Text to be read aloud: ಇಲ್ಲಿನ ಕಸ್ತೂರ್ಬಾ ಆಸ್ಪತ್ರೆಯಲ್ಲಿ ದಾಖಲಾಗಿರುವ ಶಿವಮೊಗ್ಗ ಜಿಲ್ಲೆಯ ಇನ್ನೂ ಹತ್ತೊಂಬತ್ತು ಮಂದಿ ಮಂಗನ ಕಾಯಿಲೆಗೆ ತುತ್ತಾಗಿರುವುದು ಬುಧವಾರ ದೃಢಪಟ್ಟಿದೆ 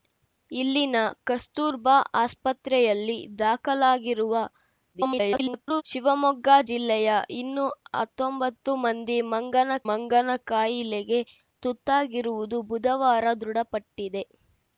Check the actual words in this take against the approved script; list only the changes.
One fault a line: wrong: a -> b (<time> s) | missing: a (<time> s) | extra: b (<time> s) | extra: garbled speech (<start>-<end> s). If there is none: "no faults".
extra: garbled speech (4.9-5.8 s)
extra: ಮಂಗನ (9.9 s)